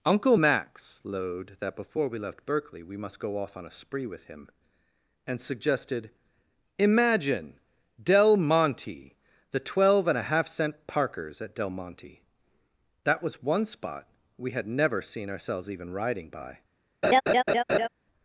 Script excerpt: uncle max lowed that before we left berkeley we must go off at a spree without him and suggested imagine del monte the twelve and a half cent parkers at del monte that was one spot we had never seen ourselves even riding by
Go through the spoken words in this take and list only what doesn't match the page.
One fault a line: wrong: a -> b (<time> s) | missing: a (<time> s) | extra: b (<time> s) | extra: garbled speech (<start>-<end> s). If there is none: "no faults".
wrong: at -> on (3.6 s)
wrong: without -> with (4.1 s)